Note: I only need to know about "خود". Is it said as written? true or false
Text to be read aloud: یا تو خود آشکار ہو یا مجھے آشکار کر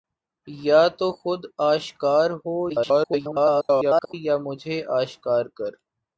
true